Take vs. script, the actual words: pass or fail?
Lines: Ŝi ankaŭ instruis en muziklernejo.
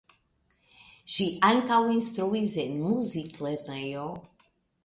pass